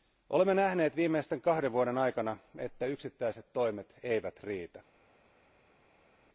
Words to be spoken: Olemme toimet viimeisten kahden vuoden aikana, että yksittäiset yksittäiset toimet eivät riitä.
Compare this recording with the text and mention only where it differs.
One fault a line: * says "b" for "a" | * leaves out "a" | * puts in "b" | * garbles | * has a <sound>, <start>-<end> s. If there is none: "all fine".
* says "nähneet" for "toimet"
* leaves out "yksittäiset"